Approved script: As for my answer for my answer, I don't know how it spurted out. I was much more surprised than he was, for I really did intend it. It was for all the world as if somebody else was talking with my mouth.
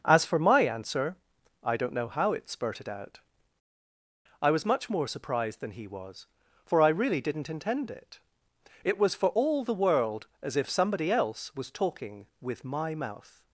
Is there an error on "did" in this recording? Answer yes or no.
yes